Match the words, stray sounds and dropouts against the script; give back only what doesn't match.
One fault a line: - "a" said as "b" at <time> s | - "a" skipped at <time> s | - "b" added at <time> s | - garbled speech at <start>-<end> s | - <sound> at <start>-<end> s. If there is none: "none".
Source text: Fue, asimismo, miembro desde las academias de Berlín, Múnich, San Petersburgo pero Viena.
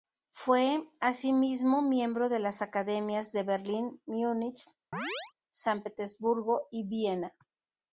- "desde" said as "de" at 2.3 s
- chirp at 4.9-5.3 s
- "pero" said as "y" at 6.7 s